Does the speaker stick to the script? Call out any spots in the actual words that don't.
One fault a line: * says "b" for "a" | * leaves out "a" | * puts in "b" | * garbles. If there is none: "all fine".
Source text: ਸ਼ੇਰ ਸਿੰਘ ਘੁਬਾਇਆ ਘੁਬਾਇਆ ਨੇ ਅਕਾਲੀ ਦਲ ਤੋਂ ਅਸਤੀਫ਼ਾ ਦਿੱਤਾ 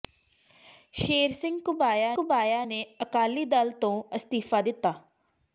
all fine